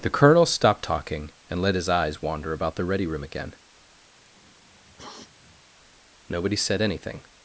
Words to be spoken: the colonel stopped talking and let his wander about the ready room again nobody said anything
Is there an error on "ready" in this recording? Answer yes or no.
no